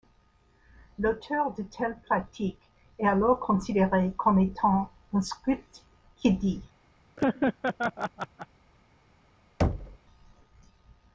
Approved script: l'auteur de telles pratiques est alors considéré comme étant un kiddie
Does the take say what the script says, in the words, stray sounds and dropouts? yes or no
no